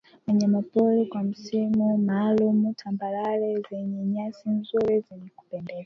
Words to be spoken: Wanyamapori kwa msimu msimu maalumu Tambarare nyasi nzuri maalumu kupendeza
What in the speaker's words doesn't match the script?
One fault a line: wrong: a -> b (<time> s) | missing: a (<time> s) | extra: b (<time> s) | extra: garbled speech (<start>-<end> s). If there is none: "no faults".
missing: msimu (2.0 s)
extra: zenye (3.7 s)
wrong: maalumu -> zenye (5.1 s)